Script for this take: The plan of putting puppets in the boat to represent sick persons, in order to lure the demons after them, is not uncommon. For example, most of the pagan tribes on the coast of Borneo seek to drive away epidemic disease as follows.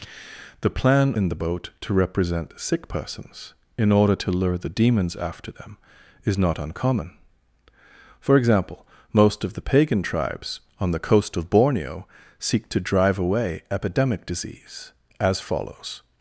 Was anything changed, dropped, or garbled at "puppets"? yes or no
yes